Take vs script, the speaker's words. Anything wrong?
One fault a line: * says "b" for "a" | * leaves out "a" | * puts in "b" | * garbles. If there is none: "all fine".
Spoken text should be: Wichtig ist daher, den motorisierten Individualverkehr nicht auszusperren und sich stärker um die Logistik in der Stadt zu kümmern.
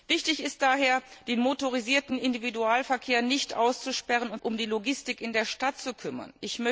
* leaves out "sich stärker"